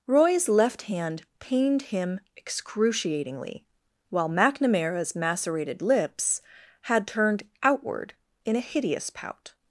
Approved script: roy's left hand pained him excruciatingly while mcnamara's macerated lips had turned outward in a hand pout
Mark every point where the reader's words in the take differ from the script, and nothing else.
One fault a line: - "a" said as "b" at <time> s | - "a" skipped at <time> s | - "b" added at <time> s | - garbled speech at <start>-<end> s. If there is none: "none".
- "hand" said as "hideous" at 8.7 s